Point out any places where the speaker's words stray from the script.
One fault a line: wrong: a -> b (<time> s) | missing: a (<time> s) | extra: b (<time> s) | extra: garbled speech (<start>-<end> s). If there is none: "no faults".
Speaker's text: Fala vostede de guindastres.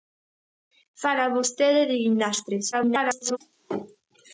extra: garbled speech (2.7-3.4 s)